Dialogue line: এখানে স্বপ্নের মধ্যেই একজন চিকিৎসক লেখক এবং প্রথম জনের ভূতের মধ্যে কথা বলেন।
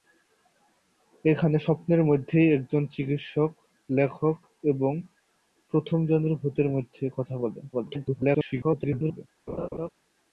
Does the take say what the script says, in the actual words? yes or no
no